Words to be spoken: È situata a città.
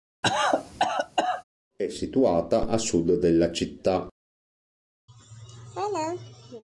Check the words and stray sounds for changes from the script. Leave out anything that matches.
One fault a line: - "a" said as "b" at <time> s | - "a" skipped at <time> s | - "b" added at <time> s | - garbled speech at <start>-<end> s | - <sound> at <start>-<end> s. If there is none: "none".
- cough at 0.2-1.4 s
- "sud della" added at 2.8 s
- laugh at 5.1-6.6 s